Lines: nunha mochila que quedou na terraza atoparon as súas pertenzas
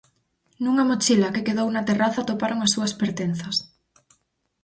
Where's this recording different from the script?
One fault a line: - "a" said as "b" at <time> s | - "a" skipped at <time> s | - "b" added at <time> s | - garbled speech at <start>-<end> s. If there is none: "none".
none